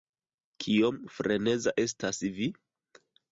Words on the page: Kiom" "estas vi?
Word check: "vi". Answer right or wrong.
right